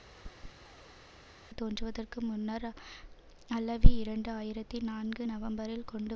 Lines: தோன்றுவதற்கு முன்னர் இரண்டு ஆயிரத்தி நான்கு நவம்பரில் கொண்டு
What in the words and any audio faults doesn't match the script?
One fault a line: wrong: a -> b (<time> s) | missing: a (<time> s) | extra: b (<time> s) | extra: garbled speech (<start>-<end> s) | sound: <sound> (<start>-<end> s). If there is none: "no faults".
sound: chirp (0.1-1.1 s)
extra: அல்லவி (3.5 s)